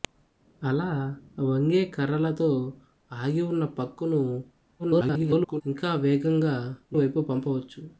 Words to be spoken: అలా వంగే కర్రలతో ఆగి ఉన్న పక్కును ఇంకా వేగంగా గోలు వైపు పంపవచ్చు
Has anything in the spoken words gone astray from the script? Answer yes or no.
yes